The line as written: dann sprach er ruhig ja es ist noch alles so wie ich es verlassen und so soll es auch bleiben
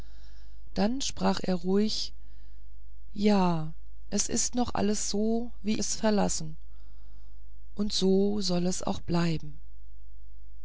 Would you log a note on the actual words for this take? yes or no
yes